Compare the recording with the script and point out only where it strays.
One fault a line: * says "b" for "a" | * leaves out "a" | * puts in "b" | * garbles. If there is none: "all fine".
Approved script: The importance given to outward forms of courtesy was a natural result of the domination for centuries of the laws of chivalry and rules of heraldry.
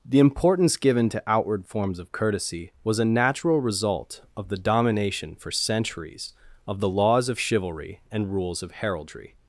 all fine